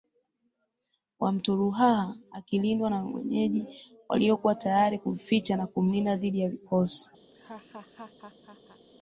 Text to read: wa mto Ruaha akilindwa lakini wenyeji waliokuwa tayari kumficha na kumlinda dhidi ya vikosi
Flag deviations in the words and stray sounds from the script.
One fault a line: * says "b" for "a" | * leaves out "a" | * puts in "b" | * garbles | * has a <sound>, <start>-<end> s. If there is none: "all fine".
* says "na" for "lakini"
* has a laugh, 7.3-8.8 s